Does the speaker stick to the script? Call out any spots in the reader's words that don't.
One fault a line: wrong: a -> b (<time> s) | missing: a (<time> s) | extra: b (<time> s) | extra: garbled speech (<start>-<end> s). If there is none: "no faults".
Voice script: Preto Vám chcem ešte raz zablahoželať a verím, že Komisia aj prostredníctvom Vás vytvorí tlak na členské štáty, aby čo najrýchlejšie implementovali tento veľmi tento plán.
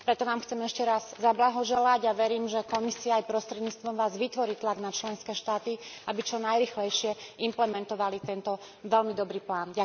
wrong: tento -> dobrý (9.2 s)